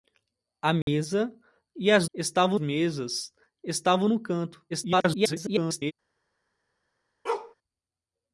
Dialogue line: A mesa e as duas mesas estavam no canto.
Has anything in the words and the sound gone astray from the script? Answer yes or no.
yes